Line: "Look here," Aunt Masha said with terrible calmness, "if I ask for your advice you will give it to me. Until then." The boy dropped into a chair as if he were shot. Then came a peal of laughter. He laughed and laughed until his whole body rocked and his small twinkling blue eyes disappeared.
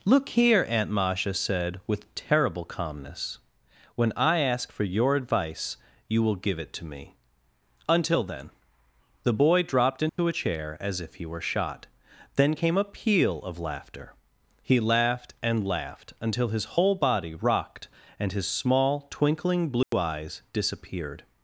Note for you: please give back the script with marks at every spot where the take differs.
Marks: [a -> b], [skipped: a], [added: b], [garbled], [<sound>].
"Look here," Aunt Masha said with terrible calmness, ["if -> when] I ask for your advice you will give it to me. Until then." The boy dropped into [dropout] a chair as if he were shot. Then came a peal of laughter. He laughed and laughed until his whole body rocked and his small twinkling blue [dropout] eyes disappeared.